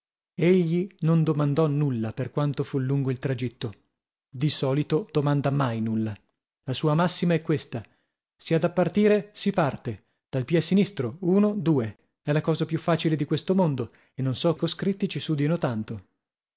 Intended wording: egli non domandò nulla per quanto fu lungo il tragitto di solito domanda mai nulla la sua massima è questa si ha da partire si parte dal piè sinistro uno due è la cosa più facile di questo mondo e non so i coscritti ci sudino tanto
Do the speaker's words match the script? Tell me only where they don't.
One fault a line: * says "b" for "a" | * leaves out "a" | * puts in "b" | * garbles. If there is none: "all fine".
all fine